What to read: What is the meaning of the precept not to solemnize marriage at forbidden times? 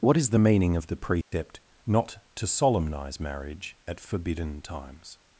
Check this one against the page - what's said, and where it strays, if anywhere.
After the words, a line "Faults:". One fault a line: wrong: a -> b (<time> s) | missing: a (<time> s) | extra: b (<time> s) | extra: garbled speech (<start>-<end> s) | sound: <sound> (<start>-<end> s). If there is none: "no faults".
What is the meaning of the precept not to solemnize marriage at forbidden times?
Faults:
sound: dropout (1.2-1.3 s)